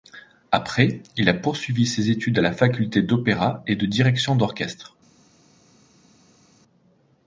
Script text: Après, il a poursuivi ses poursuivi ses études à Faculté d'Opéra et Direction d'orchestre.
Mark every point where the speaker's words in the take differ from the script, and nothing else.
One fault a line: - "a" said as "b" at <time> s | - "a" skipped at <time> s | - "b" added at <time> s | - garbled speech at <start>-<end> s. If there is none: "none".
- "poursuivi ses" skipped at 2.1 s
- "la" added at 2.4 s
- "de" added at 3.7 s